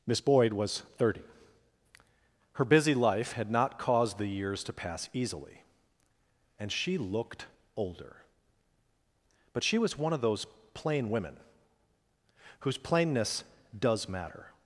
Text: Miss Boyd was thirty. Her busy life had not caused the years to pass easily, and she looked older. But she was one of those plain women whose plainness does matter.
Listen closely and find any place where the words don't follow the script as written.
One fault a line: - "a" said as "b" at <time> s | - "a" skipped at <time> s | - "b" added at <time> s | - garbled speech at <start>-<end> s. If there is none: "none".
none